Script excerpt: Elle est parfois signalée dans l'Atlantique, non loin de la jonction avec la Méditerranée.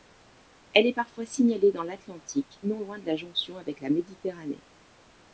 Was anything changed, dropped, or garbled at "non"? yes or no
no